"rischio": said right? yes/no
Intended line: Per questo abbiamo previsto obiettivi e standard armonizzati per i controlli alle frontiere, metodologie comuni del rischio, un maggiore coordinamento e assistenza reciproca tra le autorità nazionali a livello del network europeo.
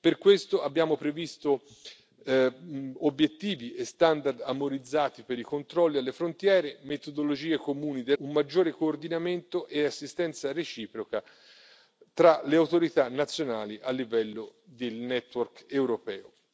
no